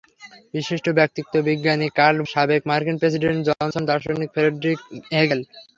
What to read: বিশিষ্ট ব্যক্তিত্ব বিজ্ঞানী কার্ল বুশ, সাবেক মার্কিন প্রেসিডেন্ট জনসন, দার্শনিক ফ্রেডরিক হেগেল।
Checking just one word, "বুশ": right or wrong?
wrong